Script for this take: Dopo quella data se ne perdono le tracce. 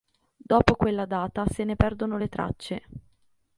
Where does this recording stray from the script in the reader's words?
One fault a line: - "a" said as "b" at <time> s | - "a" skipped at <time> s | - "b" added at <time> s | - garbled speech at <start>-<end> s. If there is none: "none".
none